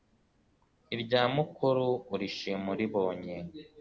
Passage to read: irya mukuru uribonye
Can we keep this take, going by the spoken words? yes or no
no